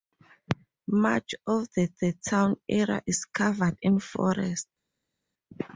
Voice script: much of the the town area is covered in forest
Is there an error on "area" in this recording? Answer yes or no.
no